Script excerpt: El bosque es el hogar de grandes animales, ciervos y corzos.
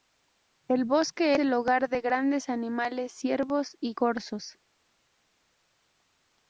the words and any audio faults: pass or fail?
fail